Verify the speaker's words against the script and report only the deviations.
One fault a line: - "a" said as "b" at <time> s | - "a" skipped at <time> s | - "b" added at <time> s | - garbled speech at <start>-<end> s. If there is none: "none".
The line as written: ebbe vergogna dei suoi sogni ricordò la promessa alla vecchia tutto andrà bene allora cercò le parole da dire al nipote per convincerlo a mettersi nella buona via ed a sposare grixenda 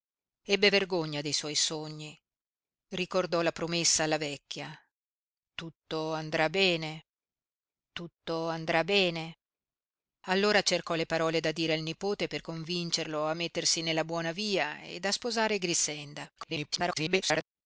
- "tutto andrà bene" added at 7.9 s
- garbled speech at 16.4-17.4 s